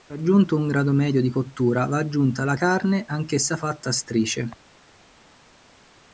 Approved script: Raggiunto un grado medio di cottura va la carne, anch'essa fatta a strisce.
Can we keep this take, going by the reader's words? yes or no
no